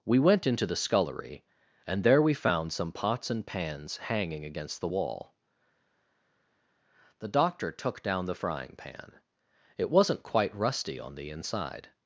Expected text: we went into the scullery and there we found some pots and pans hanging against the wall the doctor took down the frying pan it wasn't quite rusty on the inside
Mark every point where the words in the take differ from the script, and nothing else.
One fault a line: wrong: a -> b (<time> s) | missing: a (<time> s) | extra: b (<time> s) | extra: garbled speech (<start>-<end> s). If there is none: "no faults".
no faults